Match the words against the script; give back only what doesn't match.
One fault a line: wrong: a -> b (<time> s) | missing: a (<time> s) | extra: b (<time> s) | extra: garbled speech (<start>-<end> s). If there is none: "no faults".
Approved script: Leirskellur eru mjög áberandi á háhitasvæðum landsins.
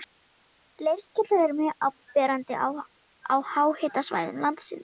no faults